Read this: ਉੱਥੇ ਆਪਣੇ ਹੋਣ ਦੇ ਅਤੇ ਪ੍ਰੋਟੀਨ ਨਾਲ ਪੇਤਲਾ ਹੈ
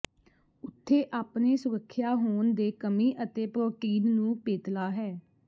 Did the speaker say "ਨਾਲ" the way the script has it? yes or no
no